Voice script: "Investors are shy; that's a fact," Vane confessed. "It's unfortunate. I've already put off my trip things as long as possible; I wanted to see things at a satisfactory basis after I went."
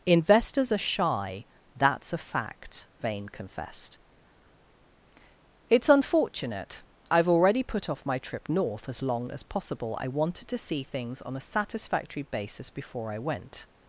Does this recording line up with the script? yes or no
no